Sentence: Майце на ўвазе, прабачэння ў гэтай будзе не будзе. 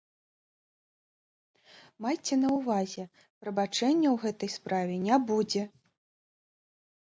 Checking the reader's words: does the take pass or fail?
fail